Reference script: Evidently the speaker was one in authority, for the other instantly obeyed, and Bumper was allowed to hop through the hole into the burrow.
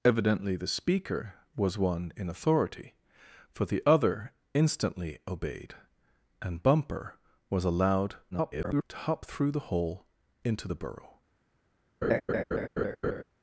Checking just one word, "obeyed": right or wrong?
right